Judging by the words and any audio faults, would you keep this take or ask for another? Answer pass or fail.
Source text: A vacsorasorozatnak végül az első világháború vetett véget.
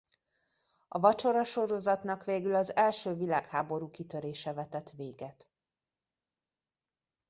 fail